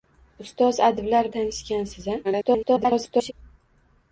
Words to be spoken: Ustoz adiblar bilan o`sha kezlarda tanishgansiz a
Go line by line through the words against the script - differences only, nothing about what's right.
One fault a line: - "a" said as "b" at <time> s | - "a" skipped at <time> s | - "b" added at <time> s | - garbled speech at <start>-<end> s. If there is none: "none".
- "bilan o`sha kezlarda" skipped at 1.3 s
- garbled speech at 2.2-3.3 s